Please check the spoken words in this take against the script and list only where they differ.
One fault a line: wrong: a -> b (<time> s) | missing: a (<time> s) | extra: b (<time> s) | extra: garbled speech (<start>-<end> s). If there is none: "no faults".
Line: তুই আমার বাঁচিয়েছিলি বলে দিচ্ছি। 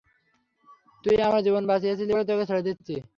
extra: জীবন (1.5 s)
extra: তোকে ছেড়ে (2.2 s)